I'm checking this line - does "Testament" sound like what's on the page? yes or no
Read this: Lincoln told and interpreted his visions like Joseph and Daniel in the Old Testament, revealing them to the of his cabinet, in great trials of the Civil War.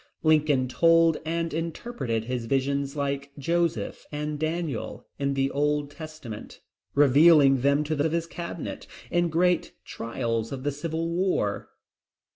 yes